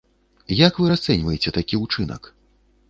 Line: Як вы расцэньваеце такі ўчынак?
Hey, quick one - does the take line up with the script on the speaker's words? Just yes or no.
yes